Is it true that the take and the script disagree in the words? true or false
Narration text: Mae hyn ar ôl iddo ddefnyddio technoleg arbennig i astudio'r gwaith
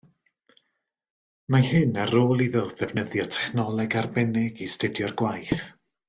false